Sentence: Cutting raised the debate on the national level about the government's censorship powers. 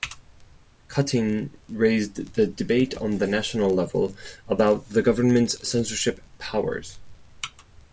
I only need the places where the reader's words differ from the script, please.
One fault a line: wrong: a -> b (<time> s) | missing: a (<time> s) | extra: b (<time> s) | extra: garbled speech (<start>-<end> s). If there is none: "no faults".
no faults